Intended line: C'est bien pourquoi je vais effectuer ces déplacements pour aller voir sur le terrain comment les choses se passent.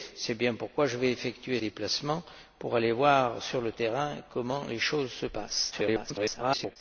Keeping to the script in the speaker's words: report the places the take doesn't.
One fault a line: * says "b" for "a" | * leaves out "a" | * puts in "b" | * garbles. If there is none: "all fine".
* leaves out "ces"
* garbles